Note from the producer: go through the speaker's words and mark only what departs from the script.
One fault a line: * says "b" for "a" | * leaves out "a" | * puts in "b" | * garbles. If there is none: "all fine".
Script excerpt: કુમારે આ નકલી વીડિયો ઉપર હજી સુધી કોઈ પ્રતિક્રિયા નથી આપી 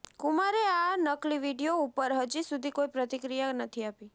all fine